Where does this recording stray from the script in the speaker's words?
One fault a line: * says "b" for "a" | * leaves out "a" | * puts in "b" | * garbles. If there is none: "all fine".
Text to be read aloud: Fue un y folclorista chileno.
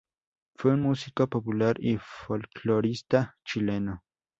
* puts in "músico popular"